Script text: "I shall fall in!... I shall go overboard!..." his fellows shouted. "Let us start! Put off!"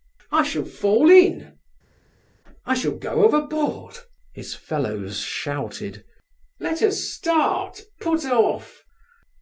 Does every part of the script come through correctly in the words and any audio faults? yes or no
yes